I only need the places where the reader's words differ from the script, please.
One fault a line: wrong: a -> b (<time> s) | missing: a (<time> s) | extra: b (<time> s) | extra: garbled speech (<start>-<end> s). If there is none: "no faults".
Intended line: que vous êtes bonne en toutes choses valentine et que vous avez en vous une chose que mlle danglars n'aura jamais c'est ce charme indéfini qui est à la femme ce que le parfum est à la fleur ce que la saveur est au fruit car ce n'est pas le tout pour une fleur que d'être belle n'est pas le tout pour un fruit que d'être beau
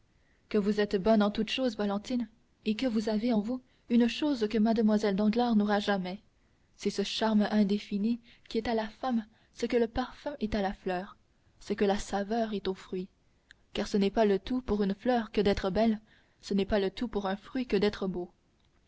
extra: ce (16.4 s)